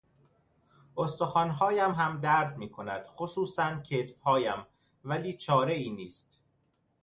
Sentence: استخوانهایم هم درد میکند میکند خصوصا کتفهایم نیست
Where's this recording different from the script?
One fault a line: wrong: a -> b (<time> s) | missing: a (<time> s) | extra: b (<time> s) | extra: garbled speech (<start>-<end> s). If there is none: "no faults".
missing: میکند (3.1 s)
extra: ولی چارهای (5.0 s)